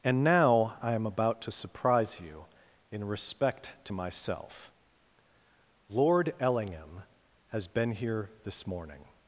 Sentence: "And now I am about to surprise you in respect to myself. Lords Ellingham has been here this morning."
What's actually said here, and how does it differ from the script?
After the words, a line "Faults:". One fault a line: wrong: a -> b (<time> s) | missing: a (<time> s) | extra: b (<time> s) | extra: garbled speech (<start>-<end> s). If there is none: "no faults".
"And now I am about to surprise you in respect to myself. Lord Ellingham has been here this morning."
Faults:
wrong: Lords -> Lord (5.9 s)